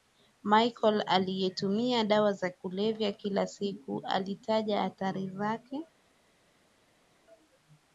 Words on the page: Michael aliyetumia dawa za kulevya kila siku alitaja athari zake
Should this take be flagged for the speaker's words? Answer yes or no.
no